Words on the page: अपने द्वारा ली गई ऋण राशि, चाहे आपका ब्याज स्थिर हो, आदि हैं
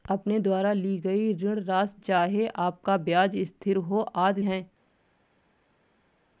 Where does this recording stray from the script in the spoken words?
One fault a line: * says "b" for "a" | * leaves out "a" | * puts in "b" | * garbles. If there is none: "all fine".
all fine